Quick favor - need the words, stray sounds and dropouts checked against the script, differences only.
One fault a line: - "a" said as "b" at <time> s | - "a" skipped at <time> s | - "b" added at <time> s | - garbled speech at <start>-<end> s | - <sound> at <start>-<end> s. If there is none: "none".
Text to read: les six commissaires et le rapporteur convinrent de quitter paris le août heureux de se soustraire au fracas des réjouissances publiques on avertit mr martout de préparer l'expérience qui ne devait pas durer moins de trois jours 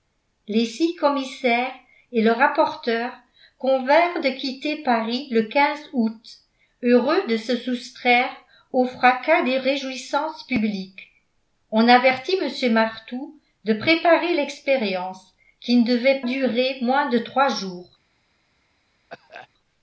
- "pas" skipped at 16.2 s
- cough at 19.1-19.5 s